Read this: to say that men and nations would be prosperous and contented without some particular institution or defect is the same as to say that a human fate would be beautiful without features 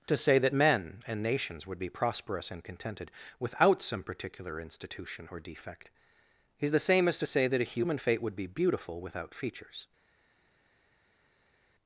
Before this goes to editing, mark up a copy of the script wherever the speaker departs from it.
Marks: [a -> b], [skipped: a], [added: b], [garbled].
to say that men and nations would be prosperous and contented without some particular institution or defect is the same as to say that a human fate would be beautiful without features